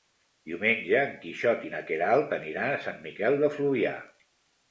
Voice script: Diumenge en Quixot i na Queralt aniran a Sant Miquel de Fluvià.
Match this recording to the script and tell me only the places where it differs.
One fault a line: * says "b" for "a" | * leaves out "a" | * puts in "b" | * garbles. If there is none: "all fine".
all fine